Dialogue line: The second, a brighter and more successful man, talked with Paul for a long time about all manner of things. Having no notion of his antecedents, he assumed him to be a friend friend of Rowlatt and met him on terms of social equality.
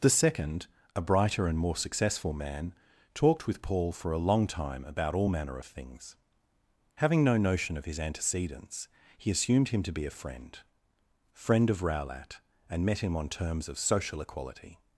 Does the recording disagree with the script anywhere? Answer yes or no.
no